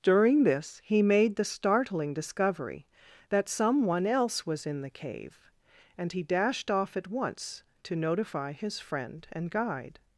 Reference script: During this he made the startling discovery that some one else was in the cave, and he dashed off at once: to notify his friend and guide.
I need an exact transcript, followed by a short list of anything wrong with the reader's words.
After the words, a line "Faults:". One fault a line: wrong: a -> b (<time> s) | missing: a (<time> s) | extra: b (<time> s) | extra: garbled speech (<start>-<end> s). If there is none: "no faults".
During this he made the startling discovery that some one else was in the cave, and he dashed off at once: to notify his friend and guide.
Faults:
no faults